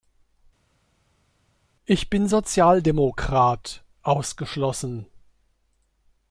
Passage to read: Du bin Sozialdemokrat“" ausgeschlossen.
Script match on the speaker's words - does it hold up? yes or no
no